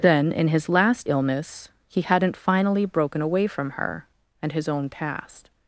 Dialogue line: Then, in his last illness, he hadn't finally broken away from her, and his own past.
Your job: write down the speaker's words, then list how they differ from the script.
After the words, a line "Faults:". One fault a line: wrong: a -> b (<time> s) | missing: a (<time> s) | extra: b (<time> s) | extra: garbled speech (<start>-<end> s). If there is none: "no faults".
Then, in his last illness, he hadn't finally broken away from her, and his own past.
Faults:
no faults